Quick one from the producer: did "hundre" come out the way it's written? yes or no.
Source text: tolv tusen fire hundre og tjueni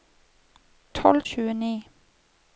no